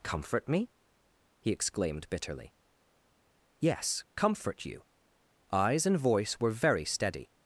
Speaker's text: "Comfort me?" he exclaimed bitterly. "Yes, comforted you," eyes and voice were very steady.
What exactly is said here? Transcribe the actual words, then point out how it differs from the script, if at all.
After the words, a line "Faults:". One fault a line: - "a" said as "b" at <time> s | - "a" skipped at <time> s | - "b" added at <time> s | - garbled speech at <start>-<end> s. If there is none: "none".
"Comfort me?" he exclaimed bitterly. "Yes, comfort you," eyes and voice were very steady.
Faults:
- "comforted" said as "comfort" at 4.2 s